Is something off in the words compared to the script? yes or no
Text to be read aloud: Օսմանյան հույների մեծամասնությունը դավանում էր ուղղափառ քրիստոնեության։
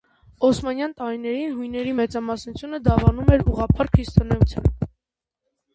yes